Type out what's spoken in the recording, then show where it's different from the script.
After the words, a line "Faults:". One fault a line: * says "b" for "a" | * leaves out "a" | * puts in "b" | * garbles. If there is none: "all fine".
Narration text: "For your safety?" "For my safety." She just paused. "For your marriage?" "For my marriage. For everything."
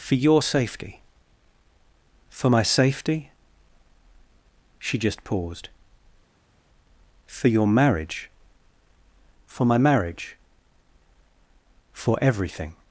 "For your safety?" "For my safety." She just paused. "For your marriage?" "For my marriage. For everything."
Faults:
all fine